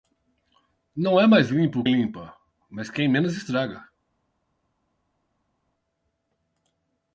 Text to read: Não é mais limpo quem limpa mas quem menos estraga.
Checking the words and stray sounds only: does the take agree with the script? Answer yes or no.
no